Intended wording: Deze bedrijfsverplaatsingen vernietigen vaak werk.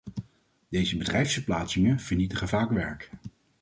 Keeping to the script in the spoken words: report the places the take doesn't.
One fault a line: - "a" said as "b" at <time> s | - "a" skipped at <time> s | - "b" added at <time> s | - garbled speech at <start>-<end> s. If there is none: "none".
none